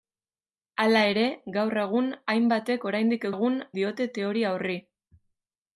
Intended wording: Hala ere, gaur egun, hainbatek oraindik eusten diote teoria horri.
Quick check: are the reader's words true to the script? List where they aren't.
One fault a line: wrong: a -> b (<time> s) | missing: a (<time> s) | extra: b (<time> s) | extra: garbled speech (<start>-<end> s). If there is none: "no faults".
wrong: eusten -> egun (3.3 s)